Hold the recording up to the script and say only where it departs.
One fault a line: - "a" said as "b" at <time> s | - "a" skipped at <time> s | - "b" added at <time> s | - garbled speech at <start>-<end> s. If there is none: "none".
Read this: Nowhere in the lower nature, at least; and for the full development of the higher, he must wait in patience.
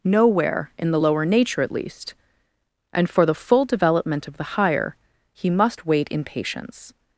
none